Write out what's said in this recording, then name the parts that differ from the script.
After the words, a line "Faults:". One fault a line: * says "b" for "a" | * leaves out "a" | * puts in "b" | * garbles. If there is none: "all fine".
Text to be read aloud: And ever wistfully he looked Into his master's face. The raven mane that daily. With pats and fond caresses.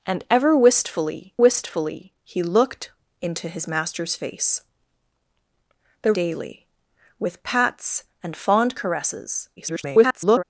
And ever wistfully wistfully he looked Into his master's face. The daily. With pats and fond caresses. [garbled]
Faults:
* puts in "wistfully"
* leaves out "raven mane that"
* garbles